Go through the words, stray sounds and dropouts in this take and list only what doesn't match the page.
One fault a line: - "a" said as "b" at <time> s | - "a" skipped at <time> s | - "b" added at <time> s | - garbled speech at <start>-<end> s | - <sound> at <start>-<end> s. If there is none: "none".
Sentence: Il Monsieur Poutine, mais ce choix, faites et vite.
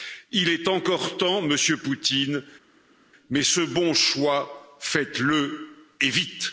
- "est encore temps" added at 0.5 s
- "bon" added at 3.6 s
- "le" added at 5.2 s